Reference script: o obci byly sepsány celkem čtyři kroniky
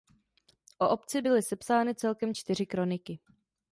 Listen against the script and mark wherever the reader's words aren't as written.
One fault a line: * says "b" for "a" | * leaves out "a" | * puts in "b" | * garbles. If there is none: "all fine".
all fine